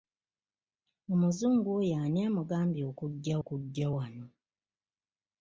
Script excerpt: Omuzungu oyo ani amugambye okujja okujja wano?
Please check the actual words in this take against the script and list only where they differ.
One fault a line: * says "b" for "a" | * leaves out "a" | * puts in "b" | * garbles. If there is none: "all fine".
all fine